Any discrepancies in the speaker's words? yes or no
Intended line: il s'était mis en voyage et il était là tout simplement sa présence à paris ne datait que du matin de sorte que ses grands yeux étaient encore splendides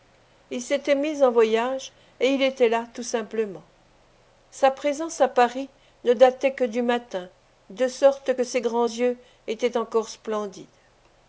no